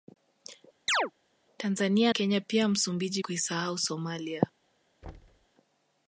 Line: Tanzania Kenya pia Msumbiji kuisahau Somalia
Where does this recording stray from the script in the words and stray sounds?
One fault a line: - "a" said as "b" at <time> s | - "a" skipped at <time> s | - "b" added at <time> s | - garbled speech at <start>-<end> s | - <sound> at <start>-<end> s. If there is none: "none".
- chirp at 0.9-1.1 s
- thud at 5.0-5.5 s